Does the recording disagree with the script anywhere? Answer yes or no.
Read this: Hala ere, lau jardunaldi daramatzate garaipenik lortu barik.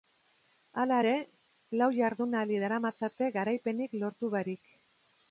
no